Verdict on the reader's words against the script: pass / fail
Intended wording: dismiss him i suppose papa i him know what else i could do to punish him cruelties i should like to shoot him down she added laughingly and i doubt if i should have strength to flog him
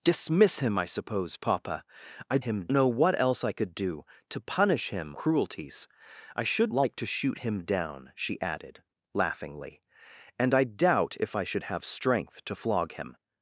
pass